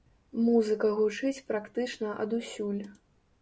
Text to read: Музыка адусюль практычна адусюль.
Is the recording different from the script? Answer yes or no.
yes